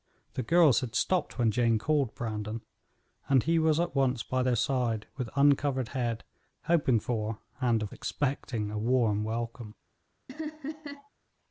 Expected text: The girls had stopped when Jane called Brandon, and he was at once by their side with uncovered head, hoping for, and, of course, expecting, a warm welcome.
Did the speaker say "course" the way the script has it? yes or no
no